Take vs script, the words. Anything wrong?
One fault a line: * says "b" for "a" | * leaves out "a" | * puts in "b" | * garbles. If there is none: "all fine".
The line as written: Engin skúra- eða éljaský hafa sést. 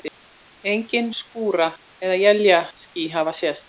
all fine